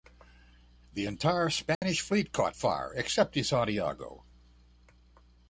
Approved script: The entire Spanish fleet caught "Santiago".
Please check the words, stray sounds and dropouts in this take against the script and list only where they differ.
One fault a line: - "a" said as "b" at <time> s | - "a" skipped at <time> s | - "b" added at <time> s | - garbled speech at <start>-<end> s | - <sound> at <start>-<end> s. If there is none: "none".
- dropout at 1.7-1.8 s
- "fire except the" added at 2.5 s